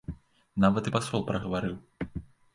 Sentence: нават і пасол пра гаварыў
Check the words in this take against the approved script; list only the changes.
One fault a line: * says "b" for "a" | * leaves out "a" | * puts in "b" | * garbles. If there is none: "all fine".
all fine